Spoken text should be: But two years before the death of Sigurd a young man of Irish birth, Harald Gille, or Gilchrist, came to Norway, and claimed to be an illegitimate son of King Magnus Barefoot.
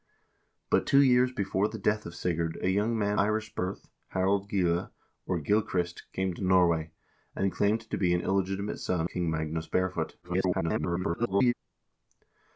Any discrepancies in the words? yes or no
yes